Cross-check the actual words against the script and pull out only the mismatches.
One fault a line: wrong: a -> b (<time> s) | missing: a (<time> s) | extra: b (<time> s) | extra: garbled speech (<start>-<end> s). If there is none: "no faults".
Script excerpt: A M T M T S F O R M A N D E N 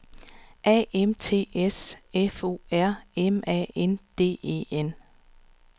missing: M T (1.5 s)